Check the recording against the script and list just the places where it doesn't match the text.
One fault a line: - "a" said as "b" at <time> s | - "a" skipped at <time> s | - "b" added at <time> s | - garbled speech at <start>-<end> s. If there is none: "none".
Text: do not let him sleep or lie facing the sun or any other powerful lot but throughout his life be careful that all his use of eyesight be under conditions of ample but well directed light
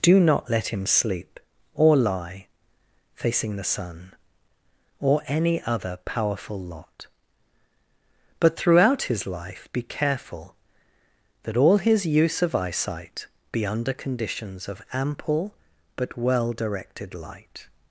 none